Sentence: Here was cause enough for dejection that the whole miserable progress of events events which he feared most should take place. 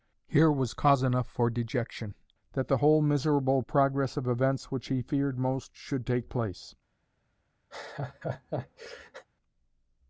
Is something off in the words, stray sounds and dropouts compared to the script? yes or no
yes